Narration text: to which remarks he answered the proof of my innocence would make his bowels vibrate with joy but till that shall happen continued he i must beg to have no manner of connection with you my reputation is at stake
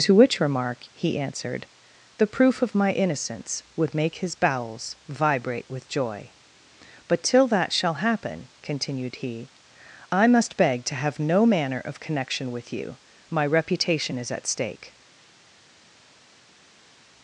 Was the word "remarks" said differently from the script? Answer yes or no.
yes